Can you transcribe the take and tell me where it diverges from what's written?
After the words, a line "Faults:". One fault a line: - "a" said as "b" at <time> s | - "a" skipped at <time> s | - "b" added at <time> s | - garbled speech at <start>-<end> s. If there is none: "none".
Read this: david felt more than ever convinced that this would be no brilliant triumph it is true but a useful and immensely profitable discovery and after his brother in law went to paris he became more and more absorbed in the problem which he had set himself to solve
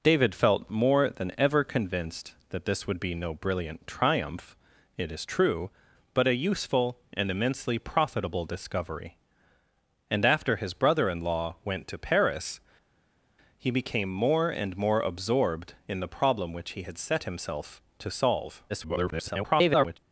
david felt more than ever convinced that this would be no brilliant triumph it is true but a useful and immensely profitable discovery and after his brother in law went to paris he became more and more absorbed in the problem which he had set himself to solve [garbled]
Faults:
- garbled speech at 18.7-20.0 s